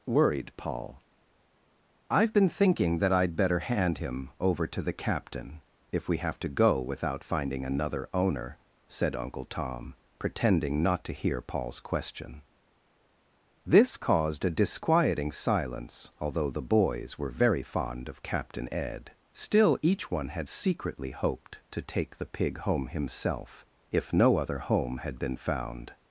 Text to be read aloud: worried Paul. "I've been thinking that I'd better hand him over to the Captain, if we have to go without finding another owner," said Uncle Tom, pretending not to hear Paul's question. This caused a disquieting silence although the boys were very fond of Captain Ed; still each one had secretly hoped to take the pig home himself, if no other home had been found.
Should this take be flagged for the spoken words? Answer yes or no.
no